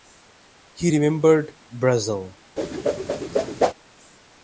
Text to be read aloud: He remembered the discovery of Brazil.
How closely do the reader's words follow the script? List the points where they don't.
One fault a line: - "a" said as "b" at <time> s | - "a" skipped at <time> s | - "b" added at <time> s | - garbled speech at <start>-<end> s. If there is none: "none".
- "the discovery of" skipped at 1.5 s